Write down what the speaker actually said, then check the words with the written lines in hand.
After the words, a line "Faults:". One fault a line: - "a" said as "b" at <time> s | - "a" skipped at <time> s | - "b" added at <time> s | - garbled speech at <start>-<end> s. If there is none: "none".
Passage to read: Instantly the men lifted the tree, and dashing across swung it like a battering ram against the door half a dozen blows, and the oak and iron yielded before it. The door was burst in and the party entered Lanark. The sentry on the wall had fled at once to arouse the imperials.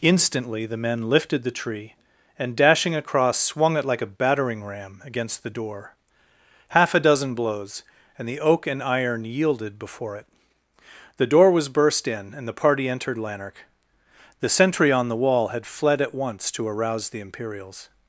Instantly the men lifted the tree, and dashing across swung it like a battering ram against the door half a dozen blows, and the oak and iron yielded before it. The door was burst in and the party entered Lanark. The sentry on the wall had fled at once to arouse the imperials.
Faults:
none